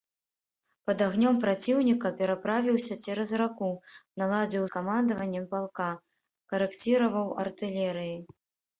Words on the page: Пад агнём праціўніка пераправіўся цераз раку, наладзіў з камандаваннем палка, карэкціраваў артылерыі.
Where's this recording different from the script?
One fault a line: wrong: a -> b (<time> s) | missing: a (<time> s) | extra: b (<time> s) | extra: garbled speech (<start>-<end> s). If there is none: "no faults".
no faults